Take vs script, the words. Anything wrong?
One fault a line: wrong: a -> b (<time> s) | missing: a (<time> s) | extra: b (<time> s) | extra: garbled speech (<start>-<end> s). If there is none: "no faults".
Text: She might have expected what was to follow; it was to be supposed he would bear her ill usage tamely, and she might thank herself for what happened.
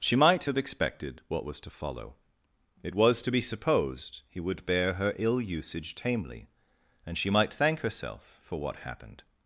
no faults